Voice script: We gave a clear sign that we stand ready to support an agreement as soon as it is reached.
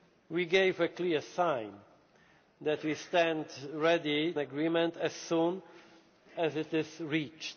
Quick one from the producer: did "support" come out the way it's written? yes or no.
no